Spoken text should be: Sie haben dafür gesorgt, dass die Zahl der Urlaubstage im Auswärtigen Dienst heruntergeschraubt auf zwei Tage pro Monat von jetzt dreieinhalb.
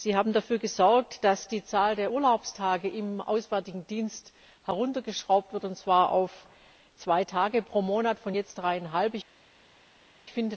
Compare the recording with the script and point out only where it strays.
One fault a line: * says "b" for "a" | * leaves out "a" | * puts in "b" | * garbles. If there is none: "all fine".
* puts in "wird und zwar"